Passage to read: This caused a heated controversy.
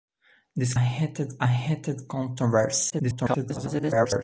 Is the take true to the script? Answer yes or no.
no